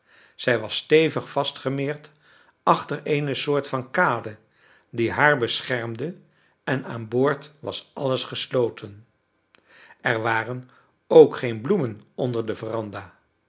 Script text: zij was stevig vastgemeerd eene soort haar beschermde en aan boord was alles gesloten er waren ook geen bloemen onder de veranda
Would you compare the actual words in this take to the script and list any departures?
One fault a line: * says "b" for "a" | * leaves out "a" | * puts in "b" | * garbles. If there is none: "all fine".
* puts in "achter"
* puts in "van kade die"